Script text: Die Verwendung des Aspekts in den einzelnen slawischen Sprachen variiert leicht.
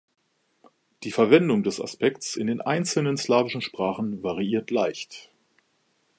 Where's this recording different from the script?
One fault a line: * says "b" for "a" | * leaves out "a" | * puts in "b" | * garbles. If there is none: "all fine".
all fine